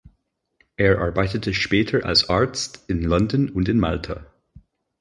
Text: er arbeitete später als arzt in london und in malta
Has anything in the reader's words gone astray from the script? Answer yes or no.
no